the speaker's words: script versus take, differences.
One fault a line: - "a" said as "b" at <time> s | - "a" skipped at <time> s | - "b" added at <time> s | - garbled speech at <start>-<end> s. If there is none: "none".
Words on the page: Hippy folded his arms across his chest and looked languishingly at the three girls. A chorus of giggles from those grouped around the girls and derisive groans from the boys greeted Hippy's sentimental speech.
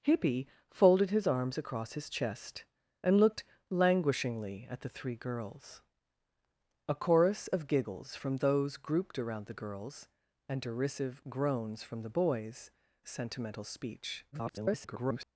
- "greeted Hippy's" skipped at 12.7 s
- garbled speech at 14.3-15.2 s